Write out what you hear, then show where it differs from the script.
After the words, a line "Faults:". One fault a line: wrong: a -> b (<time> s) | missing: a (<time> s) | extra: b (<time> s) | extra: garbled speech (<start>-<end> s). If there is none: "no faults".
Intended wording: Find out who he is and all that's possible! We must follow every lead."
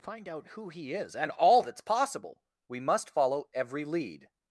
Find out who he is and all that's possible! We must follow every lead."
Faults:
no faults